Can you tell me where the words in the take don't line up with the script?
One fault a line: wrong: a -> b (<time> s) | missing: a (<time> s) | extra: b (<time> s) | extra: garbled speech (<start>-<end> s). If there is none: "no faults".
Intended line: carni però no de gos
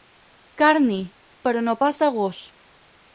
extra: pas (1.8 s)